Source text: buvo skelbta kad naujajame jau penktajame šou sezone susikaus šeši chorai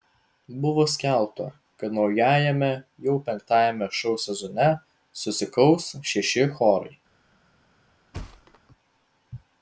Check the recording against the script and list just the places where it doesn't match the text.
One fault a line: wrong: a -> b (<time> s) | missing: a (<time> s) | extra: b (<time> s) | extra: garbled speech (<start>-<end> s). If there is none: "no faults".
no faults